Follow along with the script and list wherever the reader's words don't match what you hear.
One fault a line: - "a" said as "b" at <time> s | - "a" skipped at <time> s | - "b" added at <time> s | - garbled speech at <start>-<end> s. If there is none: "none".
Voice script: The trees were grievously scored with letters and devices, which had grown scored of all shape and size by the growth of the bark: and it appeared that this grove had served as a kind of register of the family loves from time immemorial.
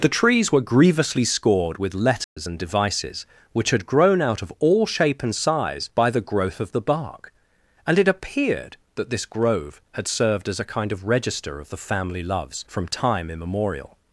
- "scored" said as "out" at 4.2 s